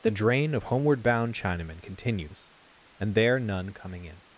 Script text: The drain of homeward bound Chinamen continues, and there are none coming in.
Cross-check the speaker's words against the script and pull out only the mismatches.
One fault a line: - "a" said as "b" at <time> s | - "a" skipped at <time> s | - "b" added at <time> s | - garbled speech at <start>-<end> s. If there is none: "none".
- "are" skipped at 3.4 s